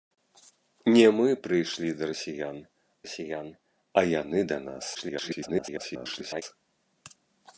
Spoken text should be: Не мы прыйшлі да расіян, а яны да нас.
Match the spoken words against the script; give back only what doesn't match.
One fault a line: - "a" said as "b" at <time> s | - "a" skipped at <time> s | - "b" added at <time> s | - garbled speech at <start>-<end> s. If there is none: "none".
- "расіян" added at 3.0 s
- garbled speech at 4.9-6.4 s